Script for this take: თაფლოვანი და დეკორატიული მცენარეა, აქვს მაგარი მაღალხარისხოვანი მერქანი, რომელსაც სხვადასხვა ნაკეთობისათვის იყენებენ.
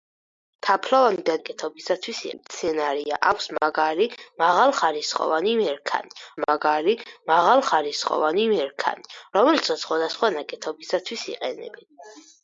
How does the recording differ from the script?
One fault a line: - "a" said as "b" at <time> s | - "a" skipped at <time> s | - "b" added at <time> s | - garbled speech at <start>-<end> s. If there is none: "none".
- "დეკორატიული" said as "ნაკეთობისათვის" at 1.4 s
- "მაგარი მაღალხარისხოვანი მერქანი" added at 6.5 s